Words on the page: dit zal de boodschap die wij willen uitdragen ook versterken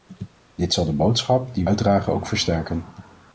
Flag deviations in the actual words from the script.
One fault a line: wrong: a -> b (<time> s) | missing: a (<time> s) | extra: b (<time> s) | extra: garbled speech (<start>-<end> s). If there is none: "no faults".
missing: wij willen (1.6 s)